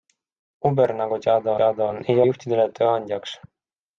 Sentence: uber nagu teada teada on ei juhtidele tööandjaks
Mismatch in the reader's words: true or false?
false